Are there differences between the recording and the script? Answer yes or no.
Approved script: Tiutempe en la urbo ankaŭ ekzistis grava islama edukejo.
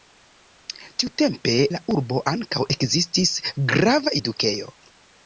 yes